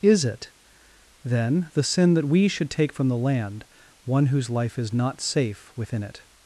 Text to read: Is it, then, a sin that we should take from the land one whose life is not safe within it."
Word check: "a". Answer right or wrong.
wrong